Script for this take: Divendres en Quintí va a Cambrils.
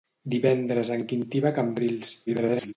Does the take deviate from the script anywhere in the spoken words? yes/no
yes